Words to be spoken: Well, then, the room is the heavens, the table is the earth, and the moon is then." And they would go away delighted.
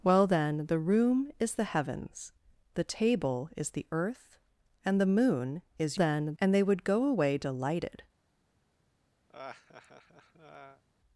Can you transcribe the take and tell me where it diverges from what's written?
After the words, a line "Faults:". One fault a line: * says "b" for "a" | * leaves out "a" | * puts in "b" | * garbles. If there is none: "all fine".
Well, then, the room is the heavens, the table is the earth, and the moon is then." And they would go away delighted.
Faults:
all fine